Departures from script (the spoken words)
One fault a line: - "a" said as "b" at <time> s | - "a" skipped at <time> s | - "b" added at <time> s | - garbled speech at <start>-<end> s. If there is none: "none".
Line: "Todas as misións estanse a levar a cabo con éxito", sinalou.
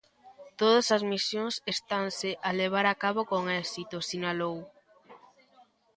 none